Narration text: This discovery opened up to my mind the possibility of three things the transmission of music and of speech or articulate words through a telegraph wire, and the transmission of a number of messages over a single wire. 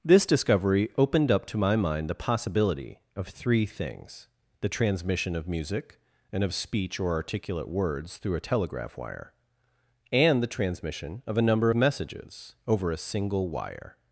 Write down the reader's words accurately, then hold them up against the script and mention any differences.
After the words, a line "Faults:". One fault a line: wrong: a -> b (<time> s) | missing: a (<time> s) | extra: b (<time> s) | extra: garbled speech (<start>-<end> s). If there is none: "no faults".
This discovery opened up to my mind the possibility of three things the transmission of music and of speech or articulate words through a telegraph wire, and the transmission of a number messages over a single wire.
Faults:
missing: of (11.7 s)